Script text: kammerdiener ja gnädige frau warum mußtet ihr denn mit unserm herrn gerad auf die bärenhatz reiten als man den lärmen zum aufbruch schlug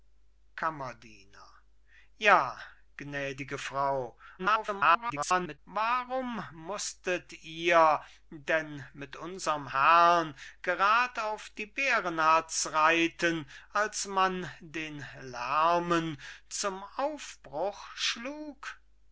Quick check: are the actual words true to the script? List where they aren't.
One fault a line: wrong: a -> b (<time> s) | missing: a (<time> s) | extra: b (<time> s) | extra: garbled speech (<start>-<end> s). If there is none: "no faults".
extra: garbled speech (4.4-5.6 s)